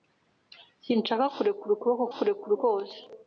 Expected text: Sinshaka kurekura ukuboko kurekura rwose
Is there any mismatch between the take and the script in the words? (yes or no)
no